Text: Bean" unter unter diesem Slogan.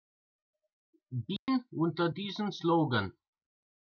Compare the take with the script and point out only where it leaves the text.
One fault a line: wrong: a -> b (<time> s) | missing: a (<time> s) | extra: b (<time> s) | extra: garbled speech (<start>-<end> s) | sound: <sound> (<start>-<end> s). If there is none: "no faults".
sound: dropout (1.4-1.5 s)
missing: unter (2.1 s)